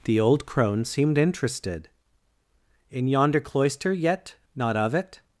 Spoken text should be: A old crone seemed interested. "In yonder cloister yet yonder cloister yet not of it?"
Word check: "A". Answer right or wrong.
wrong